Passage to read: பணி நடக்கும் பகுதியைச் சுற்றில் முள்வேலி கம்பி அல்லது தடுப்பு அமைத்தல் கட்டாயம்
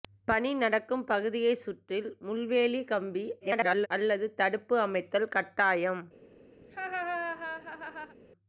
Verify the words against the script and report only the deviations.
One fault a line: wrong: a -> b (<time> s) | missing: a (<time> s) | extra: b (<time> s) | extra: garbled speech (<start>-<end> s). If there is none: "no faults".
extra: garbled speech (3.4-3.9 s)